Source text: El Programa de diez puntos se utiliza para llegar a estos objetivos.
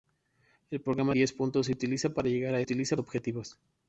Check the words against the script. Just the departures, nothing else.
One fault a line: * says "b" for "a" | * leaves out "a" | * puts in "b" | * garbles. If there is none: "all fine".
* leaves out "de"
* says "utiliza" for "estos"